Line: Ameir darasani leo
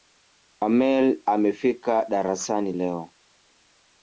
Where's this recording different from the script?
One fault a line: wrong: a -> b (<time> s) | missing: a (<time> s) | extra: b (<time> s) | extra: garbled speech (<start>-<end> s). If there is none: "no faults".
extra: amefika (1.3 s)